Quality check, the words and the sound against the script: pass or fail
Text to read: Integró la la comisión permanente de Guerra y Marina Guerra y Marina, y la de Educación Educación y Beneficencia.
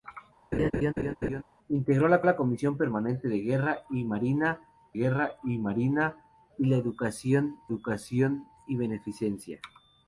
fail